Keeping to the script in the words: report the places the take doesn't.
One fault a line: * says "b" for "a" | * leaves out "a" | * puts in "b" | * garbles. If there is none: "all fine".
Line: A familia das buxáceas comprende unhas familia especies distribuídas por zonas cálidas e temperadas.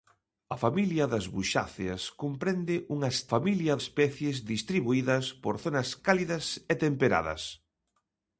all fine